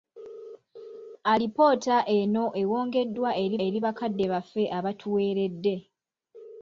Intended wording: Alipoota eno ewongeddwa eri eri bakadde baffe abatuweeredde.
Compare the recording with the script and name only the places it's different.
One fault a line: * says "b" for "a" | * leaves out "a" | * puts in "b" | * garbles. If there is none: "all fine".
all fine